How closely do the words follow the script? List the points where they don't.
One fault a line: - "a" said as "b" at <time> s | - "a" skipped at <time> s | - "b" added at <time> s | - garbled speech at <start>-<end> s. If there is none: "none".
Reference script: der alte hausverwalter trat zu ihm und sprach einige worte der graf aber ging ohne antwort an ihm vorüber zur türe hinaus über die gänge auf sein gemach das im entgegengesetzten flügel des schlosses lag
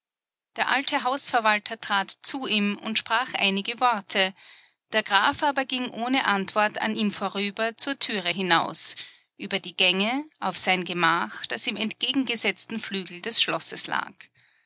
none